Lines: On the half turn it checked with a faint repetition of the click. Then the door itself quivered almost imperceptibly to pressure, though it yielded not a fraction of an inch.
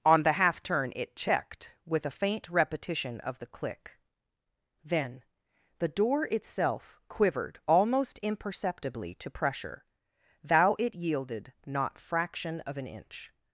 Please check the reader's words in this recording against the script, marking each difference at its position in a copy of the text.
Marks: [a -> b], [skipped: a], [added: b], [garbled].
On the half turn it checked with a faint repetition of the click. Then the door itself quivered almost imperceptibly to pressure, [though -> thou] it yielded not [skipped: a] fraction of an inch.